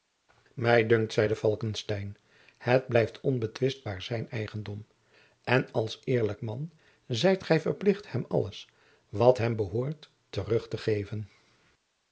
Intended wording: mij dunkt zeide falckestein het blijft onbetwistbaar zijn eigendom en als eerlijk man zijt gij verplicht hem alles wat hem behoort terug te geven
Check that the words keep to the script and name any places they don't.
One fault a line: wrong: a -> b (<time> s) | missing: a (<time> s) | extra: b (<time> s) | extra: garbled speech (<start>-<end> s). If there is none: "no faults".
no faults